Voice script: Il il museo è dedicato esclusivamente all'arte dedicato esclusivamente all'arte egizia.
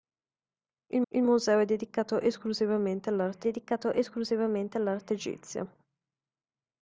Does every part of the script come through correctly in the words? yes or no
yes